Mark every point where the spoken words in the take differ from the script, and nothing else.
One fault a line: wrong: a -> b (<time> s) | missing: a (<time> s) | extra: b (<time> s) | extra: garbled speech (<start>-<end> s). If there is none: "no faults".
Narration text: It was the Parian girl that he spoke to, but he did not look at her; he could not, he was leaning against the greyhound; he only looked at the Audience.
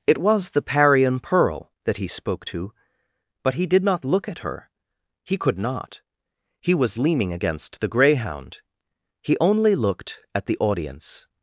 wrong: girl -> pearl (1.2 s)